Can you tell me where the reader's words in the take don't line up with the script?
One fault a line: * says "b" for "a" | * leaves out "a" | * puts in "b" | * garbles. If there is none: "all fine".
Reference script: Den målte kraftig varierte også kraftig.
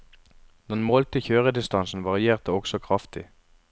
* says "kjøredistansen" for "kraftig"